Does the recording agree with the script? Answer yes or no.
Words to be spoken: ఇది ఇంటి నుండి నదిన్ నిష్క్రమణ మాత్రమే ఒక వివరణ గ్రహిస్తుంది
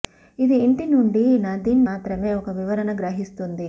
no